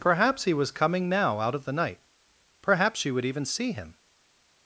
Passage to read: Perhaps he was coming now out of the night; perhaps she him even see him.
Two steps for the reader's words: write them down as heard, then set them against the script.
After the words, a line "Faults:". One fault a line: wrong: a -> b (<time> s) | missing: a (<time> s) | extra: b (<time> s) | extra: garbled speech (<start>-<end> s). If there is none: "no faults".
Perhaps he was coming now out of the night; perhaps she would even see him.
Faults:
wrong: him -> would (3.1 s)